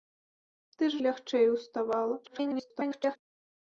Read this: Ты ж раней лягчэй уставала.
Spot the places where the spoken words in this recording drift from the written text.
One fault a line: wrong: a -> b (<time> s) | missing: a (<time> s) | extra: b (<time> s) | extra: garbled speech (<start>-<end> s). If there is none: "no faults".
missing: раней (1.0 s)
extra: garbled speech (2.2-3.2 s)